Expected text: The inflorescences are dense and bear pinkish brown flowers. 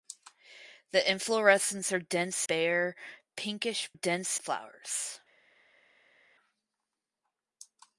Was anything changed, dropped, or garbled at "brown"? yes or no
yes